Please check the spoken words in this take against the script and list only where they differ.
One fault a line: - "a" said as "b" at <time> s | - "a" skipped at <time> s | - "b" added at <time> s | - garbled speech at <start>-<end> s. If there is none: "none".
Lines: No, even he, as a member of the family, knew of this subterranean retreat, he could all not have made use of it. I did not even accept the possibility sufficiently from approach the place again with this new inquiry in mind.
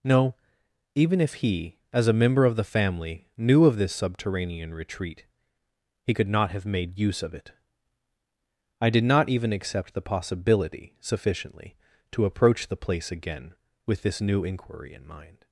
- "if" added at 1.2 s
- "all" skipped at 6.3 s
- "from" said as "to" at 12.1 s